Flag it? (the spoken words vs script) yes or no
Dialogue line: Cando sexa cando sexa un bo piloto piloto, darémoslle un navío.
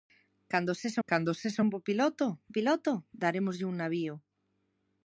no